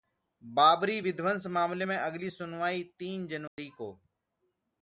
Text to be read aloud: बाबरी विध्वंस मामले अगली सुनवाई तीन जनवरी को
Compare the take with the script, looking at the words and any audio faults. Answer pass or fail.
fail